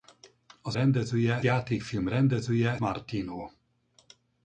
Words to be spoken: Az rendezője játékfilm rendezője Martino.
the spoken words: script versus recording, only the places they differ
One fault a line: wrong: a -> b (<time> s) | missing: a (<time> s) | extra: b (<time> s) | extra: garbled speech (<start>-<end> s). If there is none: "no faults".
no faults